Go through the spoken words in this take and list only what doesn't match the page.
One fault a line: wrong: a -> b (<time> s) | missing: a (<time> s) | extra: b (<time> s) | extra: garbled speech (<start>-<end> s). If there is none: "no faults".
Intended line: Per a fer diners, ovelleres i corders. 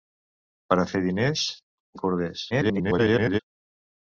missing: ovelleres (1.4 s)
extra: garbled speech (2.5-3.4 s)